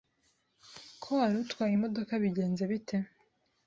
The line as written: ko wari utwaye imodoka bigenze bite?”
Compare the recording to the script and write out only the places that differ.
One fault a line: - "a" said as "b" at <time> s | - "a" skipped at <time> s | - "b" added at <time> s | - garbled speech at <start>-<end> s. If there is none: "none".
none